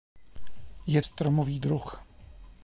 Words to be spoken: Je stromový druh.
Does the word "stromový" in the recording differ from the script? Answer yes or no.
no